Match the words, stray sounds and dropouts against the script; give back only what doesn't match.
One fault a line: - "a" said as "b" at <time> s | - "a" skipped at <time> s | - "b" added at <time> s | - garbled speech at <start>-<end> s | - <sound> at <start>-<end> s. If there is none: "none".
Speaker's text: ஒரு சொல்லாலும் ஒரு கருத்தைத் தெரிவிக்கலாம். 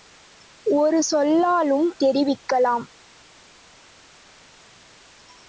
- "ஒரு கருத்தைத்" skipped at 2.0 s